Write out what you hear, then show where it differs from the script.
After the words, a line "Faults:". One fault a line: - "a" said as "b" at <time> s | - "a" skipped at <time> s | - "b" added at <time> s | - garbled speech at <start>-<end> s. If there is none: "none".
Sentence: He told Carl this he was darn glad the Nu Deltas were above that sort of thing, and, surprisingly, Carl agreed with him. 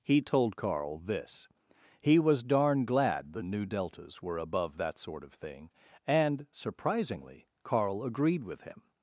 He told Carl this he was darn glad the Nu Deltas were above that sort of thing, and, surprisingly, Carl agreed with him.
Faults:
none